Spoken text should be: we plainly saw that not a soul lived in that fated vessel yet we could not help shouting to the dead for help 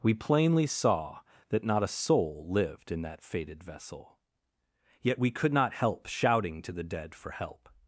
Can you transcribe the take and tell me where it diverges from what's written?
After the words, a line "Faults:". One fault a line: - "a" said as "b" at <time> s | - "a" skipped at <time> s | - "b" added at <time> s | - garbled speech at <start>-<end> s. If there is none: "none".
we plainly saw that not a soul lived in that fated vessel yet we could not help shouting to the dead for help
Faults:
none